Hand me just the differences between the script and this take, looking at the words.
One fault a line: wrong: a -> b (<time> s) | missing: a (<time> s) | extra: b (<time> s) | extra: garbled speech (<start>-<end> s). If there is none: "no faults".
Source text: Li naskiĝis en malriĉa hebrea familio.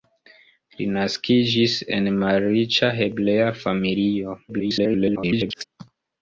extra: garbled speech (4.5-5.6 s)